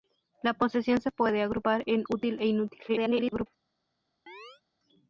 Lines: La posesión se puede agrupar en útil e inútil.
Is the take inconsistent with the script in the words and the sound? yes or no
yes